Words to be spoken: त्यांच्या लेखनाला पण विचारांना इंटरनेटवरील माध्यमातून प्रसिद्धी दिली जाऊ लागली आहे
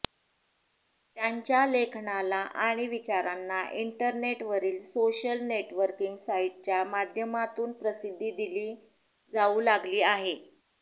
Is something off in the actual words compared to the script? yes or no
yes